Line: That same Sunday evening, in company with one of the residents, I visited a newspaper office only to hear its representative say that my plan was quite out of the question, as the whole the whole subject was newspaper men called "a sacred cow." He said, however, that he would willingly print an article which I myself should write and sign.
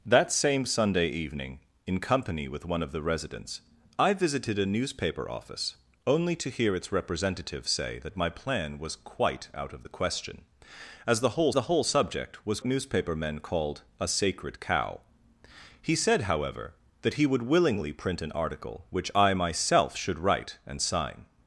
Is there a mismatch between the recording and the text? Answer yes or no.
no